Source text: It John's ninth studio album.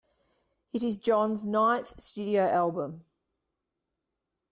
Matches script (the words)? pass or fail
fail